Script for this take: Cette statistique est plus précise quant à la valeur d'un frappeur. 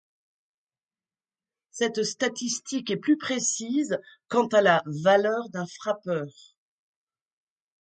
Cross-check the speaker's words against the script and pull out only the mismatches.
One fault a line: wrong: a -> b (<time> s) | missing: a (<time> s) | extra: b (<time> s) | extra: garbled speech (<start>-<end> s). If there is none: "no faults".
no faults